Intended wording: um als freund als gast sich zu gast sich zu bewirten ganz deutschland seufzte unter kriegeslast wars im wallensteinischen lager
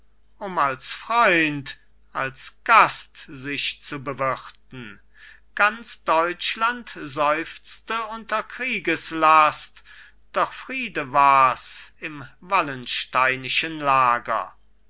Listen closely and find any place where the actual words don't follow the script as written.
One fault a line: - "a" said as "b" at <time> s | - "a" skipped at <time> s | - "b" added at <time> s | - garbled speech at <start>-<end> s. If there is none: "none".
- "gast sich zu" skipped at 4.0 s
- "doch friede" added at 10.3 s